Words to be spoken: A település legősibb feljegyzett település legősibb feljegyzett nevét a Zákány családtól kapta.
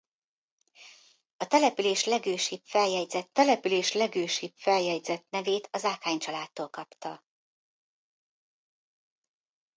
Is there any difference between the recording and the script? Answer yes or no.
no